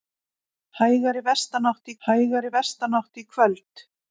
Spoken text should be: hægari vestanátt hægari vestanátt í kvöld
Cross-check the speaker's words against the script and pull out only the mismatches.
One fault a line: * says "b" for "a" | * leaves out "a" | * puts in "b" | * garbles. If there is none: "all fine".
all fine